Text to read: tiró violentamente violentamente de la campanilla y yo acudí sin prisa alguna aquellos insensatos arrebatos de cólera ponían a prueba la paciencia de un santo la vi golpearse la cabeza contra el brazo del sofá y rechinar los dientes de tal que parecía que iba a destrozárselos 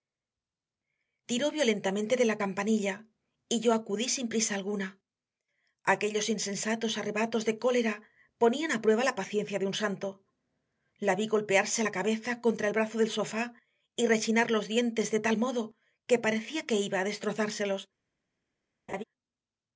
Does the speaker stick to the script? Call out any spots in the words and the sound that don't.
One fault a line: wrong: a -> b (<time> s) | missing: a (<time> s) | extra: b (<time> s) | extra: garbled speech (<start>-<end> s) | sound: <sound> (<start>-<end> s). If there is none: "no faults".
missing: violentamente (2.1 s)
extra: modo (15.4 s)
sound: laugh (18.9-19.0 s)